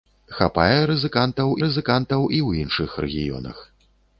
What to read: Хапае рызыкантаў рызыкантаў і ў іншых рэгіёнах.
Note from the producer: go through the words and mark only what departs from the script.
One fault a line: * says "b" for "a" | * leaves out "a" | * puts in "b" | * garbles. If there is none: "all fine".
all fine